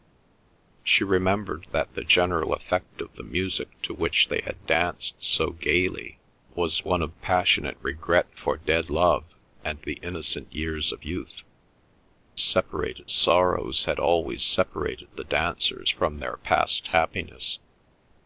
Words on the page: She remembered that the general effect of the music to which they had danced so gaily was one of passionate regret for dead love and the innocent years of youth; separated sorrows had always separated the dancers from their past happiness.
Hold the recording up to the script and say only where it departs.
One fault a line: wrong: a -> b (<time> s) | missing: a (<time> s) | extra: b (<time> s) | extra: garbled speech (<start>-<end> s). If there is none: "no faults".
no faults